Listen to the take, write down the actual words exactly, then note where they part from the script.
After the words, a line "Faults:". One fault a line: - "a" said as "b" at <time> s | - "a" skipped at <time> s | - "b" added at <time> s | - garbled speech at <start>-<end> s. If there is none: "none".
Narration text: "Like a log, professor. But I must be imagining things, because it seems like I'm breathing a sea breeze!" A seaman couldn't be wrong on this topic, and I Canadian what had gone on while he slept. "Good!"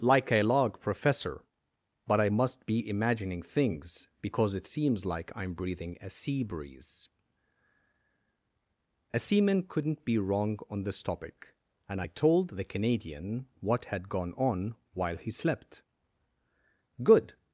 "Like a log, professor. But I must be imagining things, because it seems like I'm breathing a sea breeze!" A seaman couldn't be wrong on this topic, and I told the Canadian what had gone on while he slept. "Good!"
Faults:
- "told the" added at 12.1 s